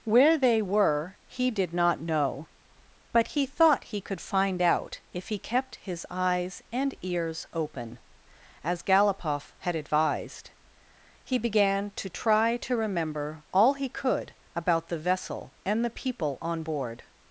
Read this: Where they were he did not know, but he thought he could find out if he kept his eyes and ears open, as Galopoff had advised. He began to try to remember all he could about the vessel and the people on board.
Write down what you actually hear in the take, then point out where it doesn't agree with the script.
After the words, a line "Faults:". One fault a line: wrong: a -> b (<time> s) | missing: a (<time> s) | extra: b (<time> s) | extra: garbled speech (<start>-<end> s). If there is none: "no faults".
Where they were he did not know, but he thought he could find out if he kept his eyes and ears open, as Galopoff had advised. He began to try to remember all he could about the vessel and the people on board.
Faults:
no faults